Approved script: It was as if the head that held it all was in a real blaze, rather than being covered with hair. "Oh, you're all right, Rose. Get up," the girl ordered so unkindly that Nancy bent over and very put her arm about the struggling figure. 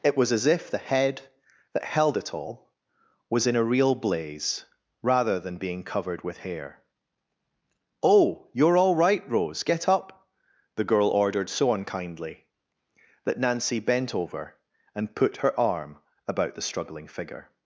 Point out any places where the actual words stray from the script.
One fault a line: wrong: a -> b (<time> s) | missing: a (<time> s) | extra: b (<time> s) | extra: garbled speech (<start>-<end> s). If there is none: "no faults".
missing: very (15.2 s)